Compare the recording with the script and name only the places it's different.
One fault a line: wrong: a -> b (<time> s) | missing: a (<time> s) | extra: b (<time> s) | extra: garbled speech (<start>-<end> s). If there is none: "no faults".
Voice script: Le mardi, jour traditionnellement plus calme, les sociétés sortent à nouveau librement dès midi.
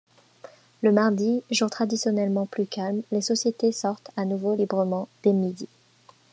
no faults